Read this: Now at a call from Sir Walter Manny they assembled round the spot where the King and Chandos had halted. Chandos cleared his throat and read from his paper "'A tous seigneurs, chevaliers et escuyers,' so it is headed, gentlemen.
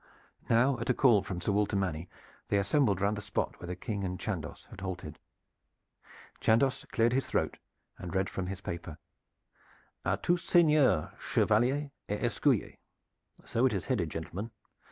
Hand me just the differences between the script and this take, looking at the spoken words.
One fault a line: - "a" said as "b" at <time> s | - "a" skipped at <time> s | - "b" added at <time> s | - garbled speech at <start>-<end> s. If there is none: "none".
none